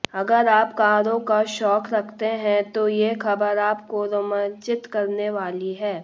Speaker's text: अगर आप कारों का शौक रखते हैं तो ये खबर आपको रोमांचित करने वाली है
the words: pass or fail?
pass